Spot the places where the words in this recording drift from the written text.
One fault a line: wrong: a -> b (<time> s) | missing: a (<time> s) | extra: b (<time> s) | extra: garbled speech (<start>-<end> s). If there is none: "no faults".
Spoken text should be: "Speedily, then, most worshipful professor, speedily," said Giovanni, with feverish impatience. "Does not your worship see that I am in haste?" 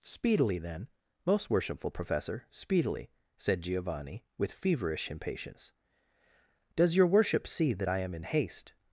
missing: not (7.0 s)